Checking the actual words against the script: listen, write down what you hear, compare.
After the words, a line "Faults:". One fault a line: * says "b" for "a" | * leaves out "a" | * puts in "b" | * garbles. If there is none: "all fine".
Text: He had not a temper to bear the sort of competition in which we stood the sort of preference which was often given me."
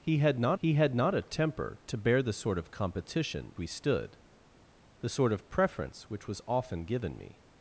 He had not he had not a temper to bear the sort of competition we stood the sort of preference which was often given me."
Faults:
* puts in "he had not"
* leaves out "in which"